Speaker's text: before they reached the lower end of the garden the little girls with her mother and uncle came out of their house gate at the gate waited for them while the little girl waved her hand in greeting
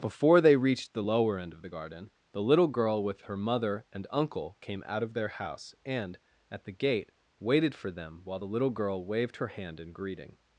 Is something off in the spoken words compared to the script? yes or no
yes